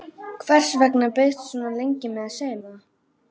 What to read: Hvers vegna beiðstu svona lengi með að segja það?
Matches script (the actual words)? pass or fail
pass